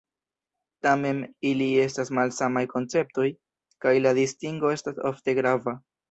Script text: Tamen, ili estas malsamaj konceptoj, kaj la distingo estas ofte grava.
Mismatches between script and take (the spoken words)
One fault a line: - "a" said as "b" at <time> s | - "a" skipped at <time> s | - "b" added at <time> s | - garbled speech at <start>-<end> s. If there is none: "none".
none